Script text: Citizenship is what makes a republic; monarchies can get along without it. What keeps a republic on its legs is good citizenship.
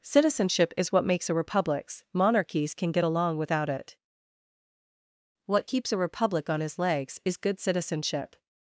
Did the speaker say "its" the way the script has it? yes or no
no